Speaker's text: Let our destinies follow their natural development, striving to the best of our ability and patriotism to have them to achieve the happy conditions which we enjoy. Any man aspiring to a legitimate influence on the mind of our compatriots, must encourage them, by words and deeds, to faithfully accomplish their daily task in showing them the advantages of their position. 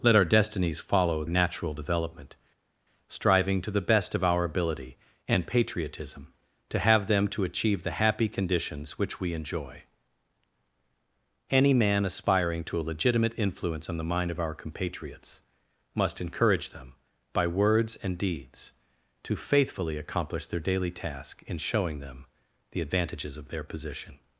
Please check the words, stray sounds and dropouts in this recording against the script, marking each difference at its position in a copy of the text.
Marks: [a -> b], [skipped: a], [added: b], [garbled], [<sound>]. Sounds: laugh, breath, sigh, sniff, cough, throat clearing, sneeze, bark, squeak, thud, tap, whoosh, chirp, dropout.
Let our destinies follow [skipped: their] natural development, striving to the best of our ability and patriotism to have them to achieve the happy conditions which we enjoy. Any man aspiring to a legitimate influence on the mind of our compatriots, must encourage them, by words and deeds, to faithfully accomplish their daily task in showing them the advantages of their position.